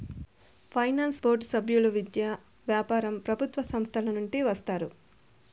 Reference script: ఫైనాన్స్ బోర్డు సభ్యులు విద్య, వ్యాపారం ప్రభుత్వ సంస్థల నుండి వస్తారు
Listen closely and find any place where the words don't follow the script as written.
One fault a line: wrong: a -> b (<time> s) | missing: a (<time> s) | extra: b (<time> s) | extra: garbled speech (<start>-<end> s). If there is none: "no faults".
no faults